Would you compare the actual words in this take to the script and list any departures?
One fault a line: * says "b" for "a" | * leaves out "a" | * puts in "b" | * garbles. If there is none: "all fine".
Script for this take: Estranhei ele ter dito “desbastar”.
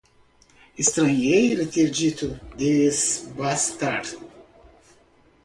all fine